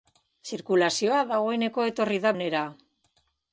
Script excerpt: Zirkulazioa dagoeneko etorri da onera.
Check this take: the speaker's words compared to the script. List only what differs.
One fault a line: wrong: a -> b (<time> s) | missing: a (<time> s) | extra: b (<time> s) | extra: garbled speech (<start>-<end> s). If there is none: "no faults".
no faults